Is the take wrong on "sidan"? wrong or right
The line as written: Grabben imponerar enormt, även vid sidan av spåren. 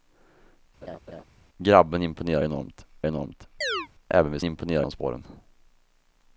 wrong